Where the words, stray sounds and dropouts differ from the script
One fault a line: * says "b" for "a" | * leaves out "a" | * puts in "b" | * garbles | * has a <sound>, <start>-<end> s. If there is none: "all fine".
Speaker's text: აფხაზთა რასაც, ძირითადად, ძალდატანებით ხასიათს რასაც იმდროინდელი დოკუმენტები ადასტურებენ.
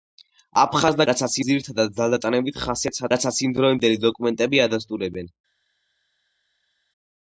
all fine